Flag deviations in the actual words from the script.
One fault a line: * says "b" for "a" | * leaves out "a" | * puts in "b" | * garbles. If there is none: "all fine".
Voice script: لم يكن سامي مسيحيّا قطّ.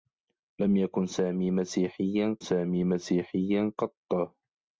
* puts in "سامي مسيحيّا"